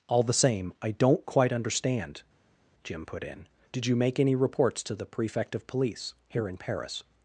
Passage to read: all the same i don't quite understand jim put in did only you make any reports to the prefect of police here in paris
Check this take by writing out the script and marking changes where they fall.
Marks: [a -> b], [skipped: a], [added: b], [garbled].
all the same i don't quite understand jim put in did [skipped: only] you make any reports to the prefect of police here in paris